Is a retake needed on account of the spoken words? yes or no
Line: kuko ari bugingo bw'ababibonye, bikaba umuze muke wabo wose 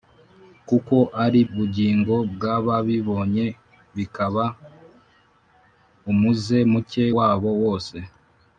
no